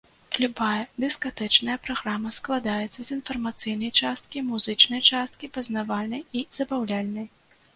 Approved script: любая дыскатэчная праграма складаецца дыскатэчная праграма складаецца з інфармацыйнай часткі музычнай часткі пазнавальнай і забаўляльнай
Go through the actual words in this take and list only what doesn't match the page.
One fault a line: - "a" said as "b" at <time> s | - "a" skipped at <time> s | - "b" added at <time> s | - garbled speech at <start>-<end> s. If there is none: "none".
- "дыскатэчная праграма складаецца" skipped at 3.0 s